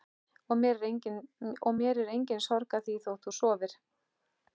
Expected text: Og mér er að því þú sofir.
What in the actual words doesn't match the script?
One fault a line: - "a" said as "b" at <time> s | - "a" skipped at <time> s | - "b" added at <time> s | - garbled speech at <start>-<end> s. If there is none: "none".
- "engin sorg" added at 2.1 s
- "þótt" added at 3.1 s